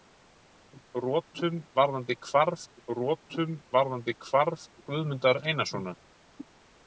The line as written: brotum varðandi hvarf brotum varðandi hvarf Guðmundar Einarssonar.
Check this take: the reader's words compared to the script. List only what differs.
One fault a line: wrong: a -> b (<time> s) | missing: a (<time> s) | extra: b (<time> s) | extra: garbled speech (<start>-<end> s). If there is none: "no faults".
no faults